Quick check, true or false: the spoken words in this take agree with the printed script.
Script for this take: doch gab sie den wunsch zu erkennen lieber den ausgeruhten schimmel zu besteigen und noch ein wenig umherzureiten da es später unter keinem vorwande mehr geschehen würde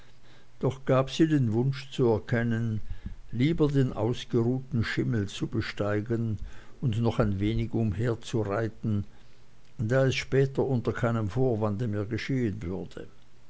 true